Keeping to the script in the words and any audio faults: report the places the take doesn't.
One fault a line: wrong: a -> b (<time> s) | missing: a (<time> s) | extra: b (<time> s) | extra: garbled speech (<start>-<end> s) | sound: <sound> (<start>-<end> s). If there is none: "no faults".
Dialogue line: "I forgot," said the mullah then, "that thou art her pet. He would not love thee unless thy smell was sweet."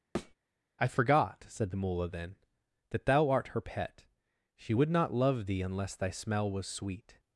sound: thud (0.1-0.3 s)
wrong: He -> She (4.6 s)